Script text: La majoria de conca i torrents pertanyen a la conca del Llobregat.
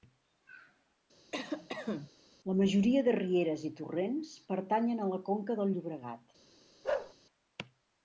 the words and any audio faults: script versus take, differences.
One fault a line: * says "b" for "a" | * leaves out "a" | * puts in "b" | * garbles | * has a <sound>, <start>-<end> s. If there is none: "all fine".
* has a cough, 1.3-2.1 s
* says "rieres" for "conca"
* has a bark, 6.8-7.1 s